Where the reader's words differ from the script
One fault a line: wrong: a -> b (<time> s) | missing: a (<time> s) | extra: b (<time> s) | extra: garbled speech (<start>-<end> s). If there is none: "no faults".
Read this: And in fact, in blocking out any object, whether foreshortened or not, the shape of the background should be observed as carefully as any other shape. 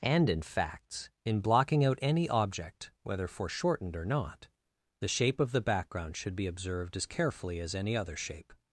wrong: fact -> facts (0.4 s)